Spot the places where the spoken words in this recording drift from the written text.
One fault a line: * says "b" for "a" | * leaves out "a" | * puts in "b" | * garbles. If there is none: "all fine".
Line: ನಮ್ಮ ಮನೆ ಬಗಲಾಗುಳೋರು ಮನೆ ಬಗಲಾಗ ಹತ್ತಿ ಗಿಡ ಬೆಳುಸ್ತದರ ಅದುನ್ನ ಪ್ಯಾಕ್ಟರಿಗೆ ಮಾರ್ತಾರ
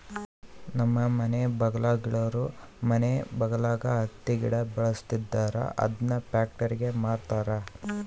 all fine